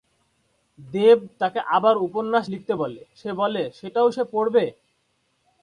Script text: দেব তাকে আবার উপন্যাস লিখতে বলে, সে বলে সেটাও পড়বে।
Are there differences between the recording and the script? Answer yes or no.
yes